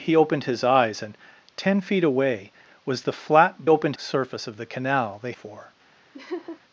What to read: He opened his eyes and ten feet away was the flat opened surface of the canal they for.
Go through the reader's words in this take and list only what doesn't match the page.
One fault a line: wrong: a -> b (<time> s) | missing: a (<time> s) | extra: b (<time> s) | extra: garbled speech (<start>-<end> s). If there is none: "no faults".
no faults